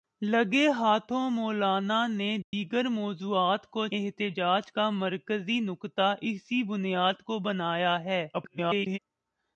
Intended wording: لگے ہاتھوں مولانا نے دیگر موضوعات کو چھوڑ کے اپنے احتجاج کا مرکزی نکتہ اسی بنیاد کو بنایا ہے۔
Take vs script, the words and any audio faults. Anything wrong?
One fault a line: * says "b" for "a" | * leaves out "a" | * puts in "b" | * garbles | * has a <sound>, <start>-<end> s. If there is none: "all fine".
* has a dropout, 2.4-2.5 s
* leaves out "چھوڑ کے اپنے"
* garbles